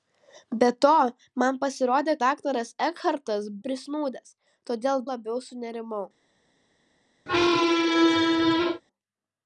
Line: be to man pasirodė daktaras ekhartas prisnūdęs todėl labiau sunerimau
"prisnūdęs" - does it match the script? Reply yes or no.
yes